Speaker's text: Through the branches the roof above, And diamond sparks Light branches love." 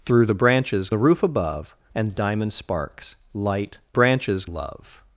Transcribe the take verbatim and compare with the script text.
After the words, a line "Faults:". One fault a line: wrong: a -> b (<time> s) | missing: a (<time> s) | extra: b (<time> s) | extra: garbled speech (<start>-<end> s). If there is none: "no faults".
Through the branches the roof above, And diamond sparks Light branches love."
Faults:
no faults